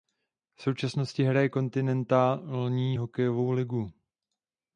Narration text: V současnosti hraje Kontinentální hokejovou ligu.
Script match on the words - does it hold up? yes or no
yes